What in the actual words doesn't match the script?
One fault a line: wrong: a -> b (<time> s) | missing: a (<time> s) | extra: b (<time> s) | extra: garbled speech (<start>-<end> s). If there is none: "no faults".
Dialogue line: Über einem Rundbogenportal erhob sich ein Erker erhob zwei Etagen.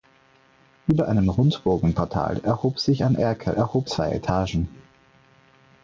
no faults